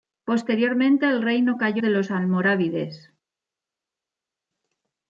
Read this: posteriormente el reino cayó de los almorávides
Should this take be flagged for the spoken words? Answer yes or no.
no